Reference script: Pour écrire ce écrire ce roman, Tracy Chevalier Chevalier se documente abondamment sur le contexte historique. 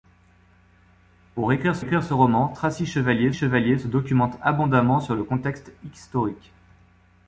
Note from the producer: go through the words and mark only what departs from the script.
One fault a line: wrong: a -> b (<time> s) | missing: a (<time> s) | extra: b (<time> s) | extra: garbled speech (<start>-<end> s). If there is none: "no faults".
no faults